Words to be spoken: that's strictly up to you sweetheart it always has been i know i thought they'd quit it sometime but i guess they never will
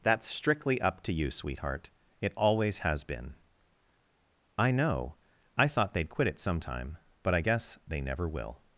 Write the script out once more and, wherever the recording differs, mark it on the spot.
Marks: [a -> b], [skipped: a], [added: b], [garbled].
that's strictly up to you sweetheart it always has been i know i thought they'd quit it sometime but i guess they never will